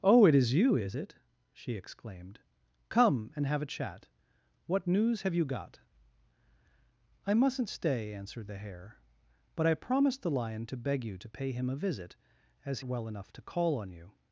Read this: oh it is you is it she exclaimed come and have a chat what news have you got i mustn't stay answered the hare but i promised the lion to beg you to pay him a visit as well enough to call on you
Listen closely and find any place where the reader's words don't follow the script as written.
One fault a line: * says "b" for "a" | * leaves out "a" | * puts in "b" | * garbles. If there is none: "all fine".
all fine